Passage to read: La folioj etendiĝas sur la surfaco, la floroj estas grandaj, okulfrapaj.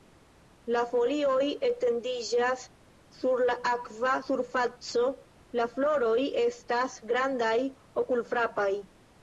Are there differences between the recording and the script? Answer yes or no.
yes